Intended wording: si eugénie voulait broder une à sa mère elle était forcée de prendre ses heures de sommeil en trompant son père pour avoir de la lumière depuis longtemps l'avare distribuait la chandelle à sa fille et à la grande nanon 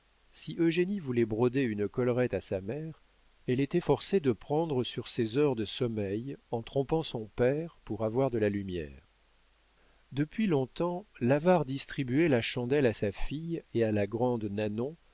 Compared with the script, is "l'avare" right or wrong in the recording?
right